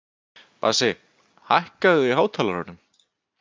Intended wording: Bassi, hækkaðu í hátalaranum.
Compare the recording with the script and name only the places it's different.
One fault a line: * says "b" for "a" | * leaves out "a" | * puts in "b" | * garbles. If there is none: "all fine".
all fine